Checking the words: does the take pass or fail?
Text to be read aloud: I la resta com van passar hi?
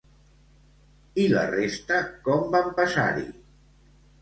pass